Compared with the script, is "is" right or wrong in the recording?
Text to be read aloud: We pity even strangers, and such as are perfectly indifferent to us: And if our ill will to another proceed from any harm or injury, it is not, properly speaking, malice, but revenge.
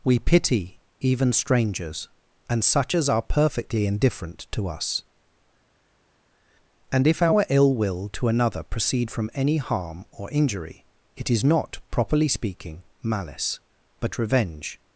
right